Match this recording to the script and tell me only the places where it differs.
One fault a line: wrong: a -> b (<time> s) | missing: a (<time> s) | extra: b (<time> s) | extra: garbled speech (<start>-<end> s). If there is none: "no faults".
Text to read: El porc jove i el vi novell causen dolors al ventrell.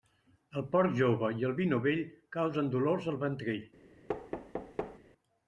no faults